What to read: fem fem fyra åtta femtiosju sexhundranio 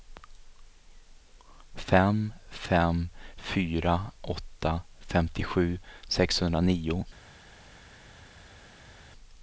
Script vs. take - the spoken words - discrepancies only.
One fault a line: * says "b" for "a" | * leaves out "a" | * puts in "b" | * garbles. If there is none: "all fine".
all fine